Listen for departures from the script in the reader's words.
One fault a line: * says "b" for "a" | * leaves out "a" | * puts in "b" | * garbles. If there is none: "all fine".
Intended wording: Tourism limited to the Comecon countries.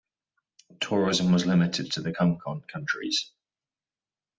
* puts in "was"